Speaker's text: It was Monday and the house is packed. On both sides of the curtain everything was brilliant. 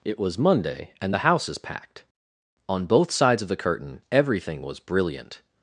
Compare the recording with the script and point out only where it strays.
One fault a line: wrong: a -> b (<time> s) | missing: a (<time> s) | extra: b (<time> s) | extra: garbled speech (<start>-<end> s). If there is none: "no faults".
no faults